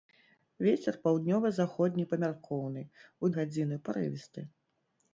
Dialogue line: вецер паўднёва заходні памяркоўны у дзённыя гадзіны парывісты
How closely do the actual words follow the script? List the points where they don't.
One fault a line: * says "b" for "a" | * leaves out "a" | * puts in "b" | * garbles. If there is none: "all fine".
* leaves out "дзённыя"